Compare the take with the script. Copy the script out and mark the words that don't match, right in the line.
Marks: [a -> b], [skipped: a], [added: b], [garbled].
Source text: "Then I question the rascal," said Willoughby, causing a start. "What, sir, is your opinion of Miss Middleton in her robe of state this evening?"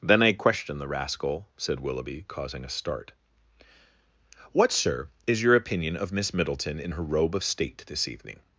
"Then I question the rascal," said Willoughby, causing a start. "What, sir, is your opinion of Miss Middleton in her robe of state this evening?"